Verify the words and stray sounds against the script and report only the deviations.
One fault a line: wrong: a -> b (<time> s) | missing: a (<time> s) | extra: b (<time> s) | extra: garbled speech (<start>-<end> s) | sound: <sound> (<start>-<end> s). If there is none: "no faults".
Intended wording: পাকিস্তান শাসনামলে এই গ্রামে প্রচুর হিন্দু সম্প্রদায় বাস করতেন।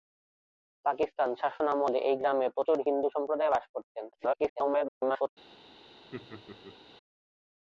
extra: garbled speech (4.1-5.3 s)
sound: laugh (6.1-6.8 s)